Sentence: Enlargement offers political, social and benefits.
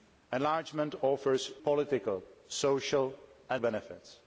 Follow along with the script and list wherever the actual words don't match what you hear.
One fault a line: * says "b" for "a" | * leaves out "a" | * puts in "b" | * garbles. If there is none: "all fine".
all fine